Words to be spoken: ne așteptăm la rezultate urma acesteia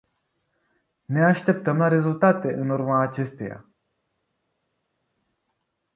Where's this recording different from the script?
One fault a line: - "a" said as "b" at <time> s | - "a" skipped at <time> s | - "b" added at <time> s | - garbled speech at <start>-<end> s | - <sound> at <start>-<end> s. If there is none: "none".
- "în" added at 2.5 s